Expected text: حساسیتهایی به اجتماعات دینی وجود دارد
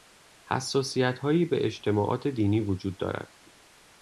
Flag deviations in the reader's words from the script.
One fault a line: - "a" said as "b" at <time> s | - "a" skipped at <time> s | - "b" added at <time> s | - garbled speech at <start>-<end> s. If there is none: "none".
none